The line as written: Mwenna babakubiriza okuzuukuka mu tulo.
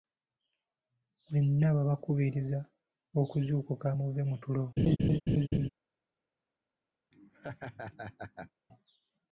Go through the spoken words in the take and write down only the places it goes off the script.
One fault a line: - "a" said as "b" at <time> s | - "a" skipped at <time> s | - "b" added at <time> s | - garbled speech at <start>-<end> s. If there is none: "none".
- "muve" added at 4.0 s